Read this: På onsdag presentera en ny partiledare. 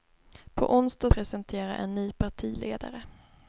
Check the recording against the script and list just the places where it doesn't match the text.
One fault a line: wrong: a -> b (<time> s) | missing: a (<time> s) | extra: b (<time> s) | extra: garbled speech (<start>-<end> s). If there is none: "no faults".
no faults